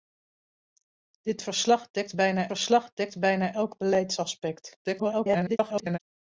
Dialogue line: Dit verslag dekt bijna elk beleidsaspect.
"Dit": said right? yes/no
yes